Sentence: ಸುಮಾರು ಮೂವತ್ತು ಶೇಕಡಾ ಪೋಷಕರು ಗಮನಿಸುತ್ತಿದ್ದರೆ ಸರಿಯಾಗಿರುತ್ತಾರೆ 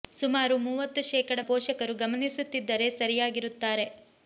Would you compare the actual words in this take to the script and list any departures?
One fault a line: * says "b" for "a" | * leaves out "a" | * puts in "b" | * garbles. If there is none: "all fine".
all fine